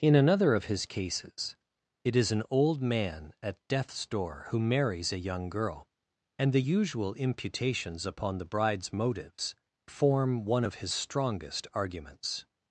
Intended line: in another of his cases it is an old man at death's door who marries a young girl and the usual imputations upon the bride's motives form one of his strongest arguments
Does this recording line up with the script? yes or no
yes